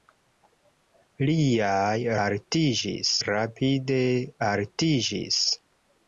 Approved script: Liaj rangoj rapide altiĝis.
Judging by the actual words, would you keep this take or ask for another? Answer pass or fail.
fail